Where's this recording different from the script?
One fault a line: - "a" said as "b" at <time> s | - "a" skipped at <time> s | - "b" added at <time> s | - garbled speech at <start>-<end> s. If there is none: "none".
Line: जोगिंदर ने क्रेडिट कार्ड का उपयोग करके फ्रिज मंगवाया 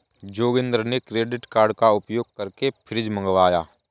none